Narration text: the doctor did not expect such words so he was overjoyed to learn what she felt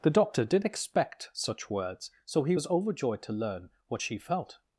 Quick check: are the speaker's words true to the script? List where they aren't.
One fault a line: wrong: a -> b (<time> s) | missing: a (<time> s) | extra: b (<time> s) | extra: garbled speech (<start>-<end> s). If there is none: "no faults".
missing: not (0.7 s)